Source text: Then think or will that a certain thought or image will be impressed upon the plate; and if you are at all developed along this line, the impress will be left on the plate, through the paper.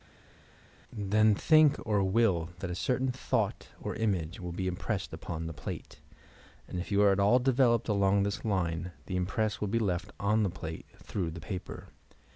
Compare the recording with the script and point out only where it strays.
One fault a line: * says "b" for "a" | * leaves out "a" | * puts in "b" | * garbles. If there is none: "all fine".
all fine